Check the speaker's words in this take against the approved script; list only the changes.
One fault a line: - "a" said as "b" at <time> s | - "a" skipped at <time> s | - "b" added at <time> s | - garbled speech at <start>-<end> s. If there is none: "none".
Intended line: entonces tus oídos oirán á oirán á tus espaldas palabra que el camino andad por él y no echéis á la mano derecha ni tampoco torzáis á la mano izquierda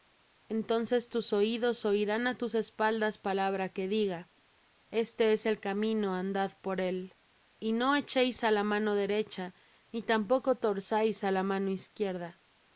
- "oirán á" skipped at 2.4 s
- "diga este es" added at 3.9 s